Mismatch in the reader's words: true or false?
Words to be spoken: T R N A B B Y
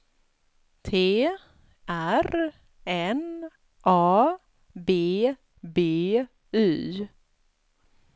false